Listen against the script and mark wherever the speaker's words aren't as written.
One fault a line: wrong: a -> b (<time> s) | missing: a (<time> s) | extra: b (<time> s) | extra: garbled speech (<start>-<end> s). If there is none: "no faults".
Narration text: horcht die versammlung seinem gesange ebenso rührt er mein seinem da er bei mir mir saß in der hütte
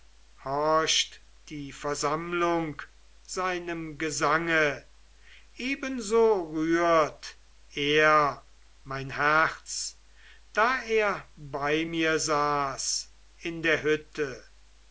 wrong: seinem -> herz (9.1 s)
missing: mir (12.2 s)